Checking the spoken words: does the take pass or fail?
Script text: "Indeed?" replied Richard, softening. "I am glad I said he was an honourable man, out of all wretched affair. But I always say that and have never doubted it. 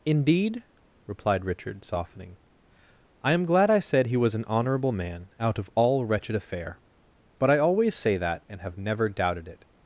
pass